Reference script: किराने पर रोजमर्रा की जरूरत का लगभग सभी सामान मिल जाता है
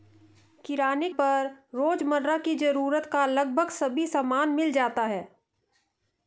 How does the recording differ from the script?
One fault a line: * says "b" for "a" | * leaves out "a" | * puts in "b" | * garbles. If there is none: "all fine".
all fine